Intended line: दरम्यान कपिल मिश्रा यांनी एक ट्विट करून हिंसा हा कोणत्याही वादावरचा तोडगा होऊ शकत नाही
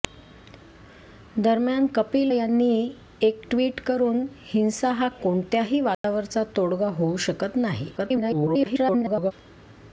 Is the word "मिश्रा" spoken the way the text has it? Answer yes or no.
no